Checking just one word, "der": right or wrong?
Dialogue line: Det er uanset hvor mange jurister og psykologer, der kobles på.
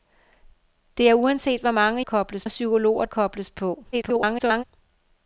wrong